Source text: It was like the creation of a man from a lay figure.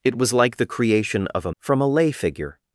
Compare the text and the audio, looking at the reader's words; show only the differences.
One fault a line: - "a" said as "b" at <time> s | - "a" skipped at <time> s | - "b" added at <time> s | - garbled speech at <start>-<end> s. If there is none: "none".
- "man" skipped at 1.5 s